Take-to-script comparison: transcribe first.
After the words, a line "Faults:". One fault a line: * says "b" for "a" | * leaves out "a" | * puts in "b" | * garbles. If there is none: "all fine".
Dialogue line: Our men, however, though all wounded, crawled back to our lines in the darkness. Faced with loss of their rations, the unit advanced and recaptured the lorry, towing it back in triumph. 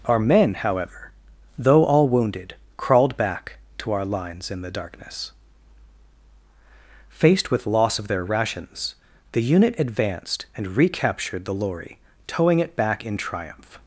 Our men, however, though all wounded, crawled back to our lines in the darkness. Faced with loss of their rations, the unit advanced and recaptured the lorry, towing it back in triumph.
Faults:
all fine